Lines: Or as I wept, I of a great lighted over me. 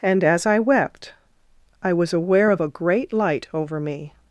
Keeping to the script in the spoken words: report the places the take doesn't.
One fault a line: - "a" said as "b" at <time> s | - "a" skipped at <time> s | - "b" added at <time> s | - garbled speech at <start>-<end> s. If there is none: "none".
- "Or" said as "And" at 0.0 s
- "was aware" added at 1.9 s
- "lighted" said as "light" at 3.1 s